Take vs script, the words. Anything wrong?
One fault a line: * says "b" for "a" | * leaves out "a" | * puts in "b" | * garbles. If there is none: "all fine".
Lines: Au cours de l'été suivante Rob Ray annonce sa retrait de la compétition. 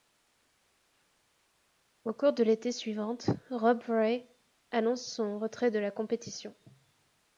* says "son" for "sa"